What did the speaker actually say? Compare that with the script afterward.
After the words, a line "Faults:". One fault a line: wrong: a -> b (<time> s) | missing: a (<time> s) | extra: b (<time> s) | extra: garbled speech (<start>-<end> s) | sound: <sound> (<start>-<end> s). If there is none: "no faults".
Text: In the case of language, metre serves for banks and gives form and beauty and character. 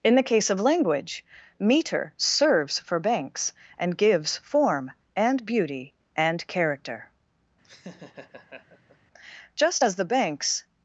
In the case of language, metre serves for banks and gives form and beauty and character. Just as the banks
Faults:
sound: laugh (7.6-9.0 s)
extra: Just as the banks (9.6 s)